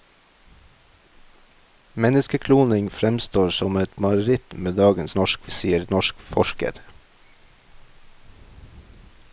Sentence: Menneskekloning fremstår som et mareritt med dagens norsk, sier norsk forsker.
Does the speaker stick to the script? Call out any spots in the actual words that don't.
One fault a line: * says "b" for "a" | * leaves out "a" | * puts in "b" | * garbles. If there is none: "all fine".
all fine